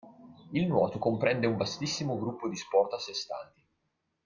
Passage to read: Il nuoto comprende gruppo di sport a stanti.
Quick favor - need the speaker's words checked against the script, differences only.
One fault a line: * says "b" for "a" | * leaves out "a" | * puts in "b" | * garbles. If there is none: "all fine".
* puts in "un vastissimo"
* puts in "sé"